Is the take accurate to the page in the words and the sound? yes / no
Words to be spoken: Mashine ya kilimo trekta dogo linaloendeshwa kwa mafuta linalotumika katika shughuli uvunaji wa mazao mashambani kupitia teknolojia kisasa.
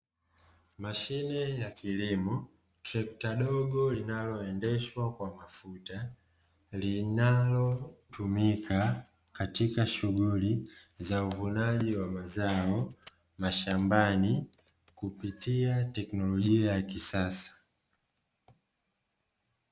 no